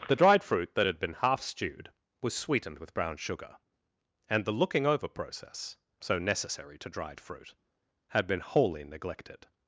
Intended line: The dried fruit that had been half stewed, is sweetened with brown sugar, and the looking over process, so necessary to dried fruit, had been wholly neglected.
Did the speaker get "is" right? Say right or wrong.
wrong